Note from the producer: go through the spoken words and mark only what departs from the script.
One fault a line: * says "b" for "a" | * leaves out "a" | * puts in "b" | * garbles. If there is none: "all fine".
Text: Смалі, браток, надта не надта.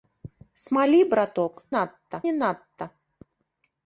all fine